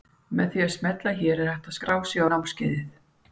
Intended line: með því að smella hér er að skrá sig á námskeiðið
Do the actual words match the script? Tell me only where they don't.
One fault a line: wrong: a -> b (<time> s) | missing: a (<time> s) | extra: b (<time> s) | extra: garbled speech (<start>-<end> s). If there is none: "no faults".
extra: hægt (1.5 s)